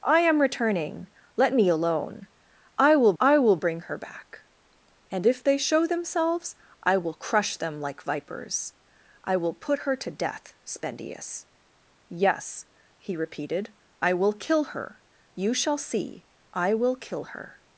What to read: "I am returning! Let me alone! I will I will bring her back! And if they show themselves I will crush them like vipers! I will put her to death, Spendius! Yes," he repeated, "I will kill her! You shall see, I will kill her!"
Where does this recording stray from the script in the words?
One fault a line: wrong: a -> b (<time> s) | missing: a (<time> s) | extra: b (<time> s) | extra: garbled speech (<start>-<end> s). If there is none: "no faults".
no faults